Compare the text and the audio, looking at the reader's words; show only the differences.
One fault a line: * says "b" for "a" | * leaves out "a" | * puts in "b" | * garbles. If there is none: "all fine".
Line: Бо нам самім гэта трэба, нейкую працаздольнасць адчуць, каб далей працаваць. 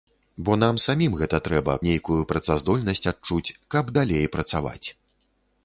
all fine